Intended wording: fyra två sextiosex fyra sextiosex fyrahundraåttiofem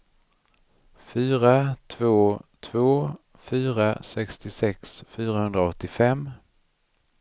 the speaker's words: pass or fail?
fail